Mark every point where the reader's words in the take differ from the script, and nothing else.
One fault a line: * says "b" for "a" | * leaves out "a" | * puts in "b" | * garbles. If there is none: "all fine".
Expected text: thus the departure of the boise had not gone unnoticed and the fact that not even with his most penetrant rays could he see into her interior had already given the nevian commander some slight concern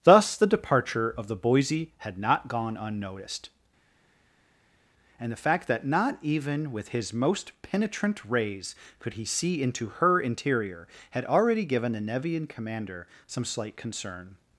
all fine